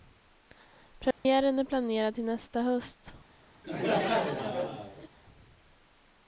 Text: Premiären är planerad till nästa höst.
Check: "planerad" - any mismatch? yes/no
no